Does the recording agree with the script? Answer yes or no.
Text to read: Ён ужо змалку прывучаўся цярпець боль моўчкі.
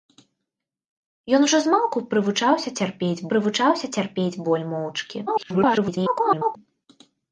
no